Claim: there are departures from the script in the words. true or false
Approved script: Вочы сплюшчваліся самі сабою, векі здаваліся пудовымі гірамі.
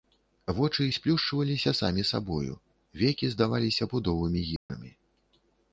false